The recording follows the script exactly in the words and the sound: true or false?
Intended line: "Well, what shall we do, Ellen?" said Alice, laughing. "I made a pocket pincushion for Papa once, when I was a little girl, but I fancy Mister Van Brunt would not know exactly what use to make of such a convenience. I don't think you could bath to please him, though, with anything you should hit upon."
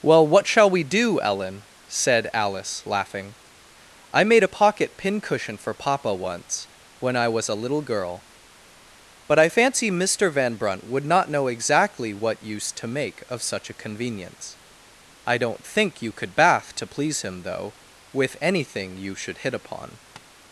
false